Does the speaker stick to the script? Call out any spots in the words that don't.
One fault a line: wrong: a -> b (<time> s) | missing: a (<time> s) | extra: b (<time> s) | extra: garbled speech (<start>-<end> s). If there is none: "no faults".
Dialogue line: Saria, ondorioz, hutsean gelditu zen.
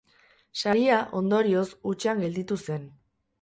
no faults